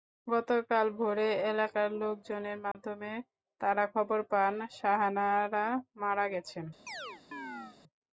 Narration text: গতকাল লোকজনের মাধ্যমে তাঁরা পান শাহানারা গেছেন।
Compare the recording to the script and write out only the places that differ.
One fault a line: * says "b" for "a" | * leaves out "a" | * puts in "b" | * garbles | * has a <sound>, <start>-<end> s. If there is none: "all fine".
* puts in "ভোরে এলাকার"
* has a dropout, 2.7-2.7 s
* puts in "খবর"
* puts in "মারা"
* has a chirp, 6.9-7.8 s